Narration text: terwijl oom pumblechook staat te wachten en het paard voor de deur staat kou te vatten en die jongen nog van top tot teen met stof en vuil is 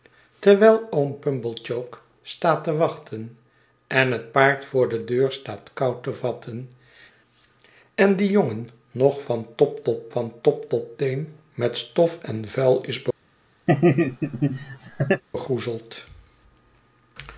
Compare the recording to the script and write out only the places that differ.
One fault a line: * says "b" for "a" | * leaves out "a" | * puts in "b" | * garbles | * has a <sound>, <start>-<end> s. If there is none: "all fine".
* puts in "van top tot"
* has a laugh, 13.7-15.2 s